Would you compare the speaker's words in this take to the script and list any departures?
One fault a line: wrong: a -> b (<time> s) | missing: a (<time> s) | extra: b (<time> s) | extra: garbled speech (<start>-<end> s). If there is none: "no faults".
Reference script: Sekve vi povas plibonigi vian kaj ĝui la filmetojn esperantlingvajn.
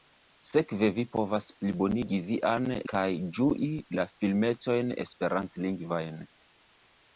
no faults